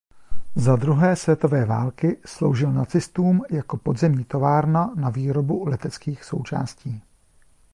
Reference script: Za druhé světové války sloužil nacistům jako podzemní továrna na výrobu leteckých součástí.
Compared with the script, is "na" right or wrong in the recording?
right